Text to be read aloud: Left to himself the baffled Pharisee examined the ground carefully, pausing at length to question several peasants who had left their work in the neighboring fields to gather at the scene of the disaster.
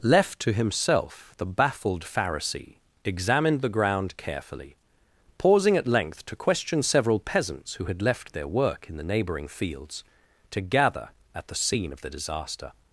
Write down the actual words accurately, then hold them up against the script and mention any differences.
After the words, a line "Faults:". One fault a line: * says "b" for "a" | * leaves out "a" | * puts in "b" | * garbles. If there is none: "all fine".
Left to himself the baffled Pharisee examined the ground carefully, pausing at length to question several peasants who had left their work in the neighboring fields to gather at the scene of the disaster.
Faults:
all fine